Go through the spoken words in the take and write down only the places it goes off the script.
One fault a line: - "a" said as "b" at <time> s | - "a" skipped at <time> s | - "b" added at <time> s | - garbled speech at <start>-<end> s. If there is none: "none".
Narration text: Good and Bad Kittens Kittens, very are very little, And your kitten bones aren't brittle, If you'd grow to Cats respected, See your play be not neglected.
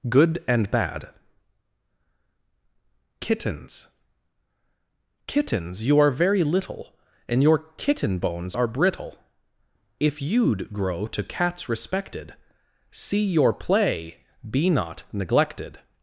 - "very" said as "you" at 5.8 s
- "aren't" said as "are" at 8.5 s